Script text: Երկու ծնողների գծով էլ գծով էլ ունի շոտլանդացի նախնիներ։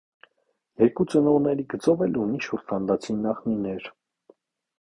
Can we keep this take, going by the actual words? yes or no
no